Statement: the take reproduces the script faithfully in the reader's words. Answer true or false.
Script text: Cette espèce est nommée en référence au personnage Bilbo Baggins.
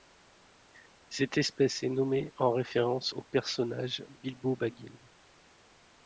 true